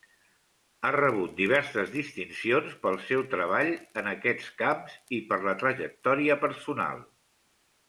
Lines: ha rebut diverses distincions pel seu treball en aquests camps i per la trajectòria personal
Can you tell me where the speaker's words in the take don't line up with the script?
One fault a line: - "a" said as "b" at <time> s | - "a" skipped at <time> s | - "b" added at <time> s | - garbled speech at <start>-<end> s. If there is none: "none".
none